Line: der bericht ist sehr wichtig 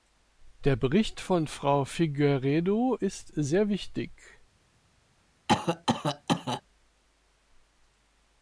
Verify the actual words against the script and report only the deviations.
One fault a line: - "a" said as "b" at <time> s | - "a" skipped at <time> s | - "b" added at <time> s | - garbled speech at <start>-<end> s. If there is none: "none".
- "von frau figueiredo" added at 1.2 s